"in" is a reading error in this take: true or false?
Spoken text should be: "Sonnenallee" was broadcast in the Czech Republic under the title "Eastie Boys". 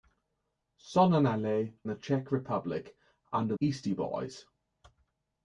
true